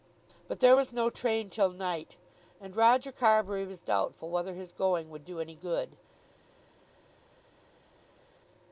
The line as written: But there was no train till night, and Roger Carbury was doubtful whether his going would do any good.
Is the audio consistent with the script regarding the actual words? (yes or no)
yes